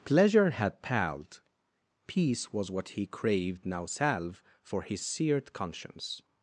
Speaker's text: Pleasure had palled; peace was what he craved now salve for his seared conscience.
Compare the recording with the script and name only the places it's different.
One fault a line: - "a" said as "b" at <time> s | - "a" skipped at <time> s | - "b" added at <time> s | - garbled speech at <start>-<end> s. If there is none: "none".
none